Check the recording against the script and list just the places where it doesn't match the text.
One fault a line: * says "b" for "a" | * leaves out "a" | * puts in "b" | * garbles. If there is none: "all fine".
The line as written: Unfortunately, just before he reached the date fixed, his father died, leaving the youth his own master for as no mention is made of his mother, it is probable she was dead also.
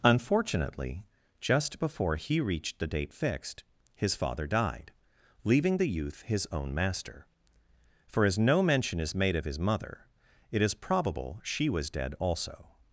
all fine